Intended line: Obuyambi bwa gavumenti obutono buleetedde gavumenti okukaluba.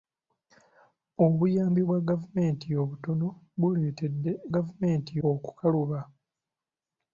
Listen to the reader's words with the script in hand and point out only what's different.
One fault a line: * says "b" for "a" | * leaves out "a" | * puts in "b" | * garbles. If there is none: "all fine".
all fine